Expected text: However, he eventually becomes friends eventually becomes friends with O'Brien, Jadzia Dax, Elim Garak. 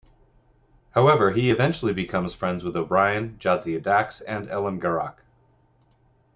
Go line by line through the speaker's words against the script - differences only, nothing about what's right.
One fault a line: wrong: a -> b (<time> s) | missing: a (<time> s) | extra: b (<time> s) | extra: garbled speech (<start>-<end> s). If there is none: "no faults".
missing: eventually becomes friends (2.6 s)
extra: and (4.2 s)